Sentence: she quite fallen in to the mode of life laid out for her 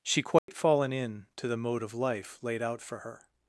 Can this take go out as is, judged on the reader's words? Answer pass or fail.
pass